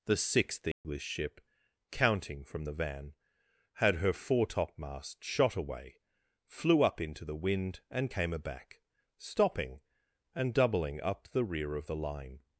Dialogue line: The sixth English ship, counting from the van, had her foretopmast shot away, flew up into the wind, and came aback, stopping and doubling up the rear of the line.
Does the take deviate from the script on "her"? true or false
false